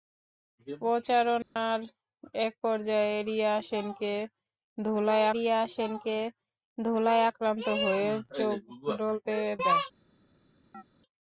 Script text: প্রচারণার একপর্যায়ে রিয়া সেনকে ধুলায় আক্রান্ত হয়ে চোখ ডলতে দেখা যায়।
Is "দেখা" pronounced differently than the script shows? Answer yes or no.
yes